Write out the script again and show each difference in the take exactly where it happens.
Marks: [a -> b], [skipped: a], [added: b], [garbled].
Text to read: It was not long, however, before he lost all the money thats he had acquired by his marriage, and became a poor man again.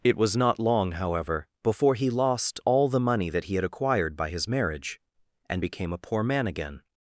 It was not long, however, before he lost all the money [thats -> that] he had acquired by his marriage, and became a poor man again.